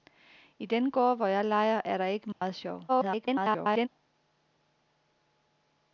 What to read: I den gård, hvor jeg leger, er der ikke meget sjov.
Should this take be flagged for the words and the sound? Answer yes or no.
yes